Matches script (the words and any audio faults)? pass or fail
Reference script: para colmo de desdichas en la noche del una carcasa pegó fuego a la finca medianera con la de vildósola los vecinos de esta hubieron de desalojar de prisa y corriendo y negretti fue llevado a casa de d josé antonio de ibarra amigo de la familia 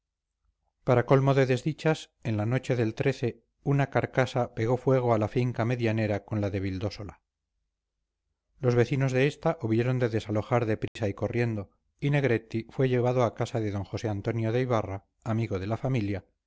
fail